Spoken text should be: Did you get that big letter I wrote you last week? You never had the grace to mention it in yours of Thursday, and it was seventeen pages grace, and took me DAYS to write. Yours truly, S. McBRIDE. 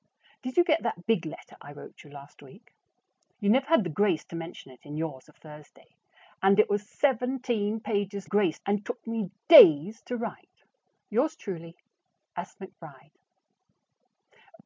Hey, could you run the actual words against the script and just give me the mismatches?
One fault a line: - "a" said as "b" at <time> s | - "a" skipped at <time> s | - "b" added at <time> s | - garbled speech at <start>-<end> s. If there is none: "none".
none